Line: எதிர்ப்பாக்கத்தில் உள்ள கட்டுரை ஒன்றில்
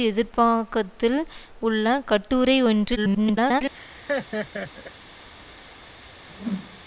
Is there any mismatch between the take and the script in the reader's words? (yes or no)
yes